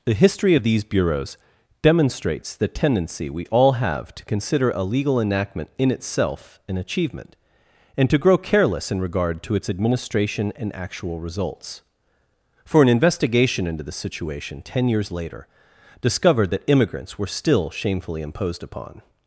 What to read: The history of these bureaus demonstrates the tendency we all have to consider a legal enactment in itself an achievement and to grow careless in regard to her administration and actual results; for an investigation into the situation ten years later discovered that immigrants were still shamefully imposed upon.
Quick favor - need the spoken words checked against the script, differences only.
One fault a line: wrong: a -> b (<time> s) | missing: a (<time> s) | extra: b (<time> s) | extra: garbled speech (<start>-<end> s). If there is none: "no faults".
wrong: her -> its (9.6 s)